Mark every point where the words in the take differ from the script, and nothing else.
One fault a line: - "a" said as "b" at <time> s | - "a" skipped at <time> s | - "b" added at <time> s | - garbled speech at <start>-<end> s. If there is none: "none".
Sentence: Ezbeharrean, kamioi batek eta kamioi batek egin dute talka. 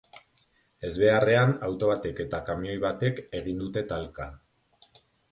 - "kamioi" said as "auto" at 1.7 s